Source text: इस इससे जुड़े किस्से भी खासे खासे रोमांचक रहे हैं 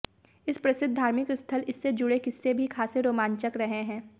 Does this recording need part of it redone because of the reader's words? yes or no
yes